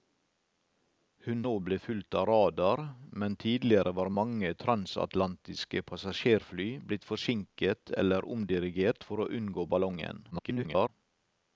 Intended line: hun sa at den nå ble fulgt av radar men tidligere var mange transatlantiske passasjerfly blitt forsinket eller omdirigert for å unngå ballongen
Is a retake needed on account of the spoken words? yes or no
yes